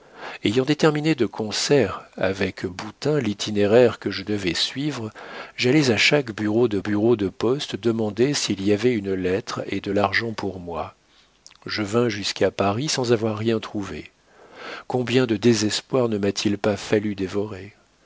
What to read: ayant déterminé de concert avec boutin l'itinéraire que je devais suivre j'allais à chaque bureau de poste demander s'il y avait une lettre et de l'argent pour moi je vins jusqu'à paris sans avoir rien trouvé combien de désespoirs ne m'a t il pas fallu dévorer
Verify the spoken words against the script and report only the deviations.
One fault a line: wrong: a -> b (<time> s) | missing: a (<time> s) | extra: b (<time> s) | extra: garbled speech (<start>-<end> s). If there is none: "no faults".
extra: bureau de (6.8 s)